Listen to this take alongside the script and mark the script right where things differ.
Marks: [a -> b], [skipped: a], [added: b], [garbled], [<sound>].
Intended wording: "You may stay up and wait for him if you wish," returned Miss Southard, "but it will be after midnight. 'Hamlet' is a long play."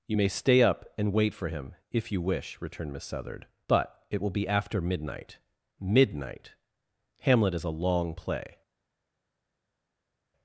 "You may stay up and wait for him if you wish," returned Miss Southard, "but it will be after midnight. [added: midnight] 'Hamlet' is a long play."